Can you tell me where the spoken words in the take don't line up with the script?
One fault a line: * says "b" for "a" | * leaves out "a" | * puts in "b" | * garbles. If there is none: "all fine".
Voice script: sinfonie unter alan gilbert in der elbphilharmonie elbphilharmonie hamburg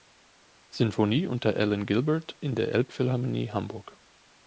* leaves out "elbphilharmonie"